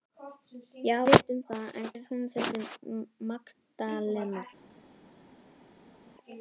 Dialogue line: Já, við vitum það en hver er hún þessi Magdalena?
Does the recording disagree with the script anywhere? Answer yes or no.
yes